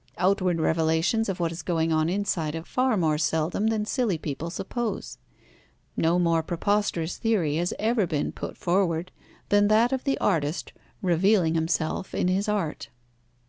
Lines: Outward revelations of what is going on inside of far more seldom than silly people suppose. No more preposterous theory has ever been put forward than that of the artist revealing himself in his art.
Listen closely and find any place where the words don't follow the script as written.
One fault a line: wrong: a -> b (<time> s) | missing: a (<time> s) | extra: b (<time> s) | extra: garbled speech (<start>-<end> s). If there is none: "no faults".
no faults